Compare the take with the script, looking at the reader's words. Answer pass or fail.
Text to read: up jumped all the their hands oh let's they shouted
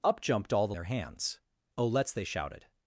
pass